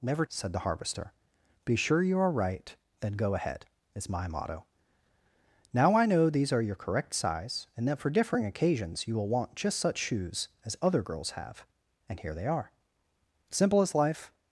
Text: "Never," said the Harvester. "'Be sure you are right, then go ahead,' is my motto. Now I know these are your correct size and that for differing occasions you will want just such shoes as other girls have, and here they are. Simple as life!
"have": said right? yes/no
yes